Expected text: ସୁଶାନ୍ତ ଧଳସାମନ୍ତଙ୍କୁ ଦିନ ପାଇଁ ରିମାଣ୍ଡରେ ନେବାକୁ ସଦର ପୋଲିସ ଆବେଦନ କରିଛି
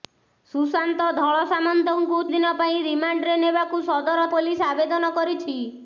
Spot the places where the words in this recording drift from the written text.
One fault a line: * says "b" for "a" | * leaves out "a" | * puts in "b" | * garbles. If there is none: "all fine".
all fine